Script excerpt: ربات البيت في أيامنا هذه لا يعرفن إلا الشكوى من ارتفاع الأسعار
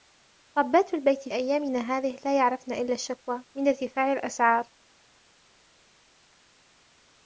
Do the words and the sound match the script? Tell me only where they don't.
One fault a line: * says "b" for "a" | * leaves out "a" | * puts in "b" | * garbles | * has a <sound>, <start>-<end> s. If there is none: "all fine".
* leaves out "في"